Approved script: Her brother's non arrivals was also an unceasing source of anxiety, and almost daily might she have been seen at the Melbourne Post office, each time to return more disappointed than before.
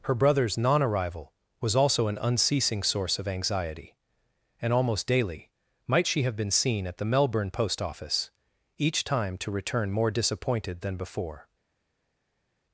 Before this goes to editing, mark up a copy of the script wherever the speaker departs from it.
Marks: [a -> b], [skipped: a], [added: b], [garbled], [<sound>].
Her brother's non [arrivals -> arrival] was also an unceasing source of anxiety, and almost daily might she have been seen at the Melbourne Post office, each time to return more disappointed than before.